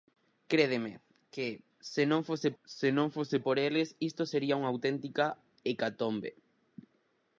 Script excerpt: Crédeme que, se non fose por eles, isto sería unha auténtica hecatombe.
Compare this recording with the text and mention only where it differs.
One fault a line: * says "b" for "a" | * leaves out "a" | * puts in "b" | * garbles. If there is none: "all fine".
* puts in "se non fose"